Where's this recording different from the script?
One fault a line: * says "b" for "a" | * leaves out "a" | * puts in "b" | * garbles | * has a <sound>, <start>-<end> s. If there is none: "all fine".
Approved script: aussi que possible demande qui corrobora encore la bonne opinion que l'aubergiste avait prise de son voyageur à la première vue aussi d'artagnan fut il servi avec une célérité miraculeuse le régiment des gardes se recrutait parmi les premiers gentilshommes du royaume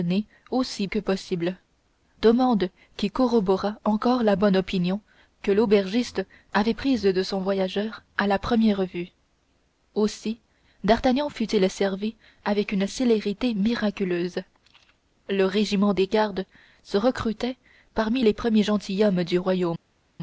all fine